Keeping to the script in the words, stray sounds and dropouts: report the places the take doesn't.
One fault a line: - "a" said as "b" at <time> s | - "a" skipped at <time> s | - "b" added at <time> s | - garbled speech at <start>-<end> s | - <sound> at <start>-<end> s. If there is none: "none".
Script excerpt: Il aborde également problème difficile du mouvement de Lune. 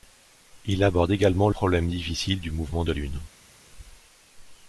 none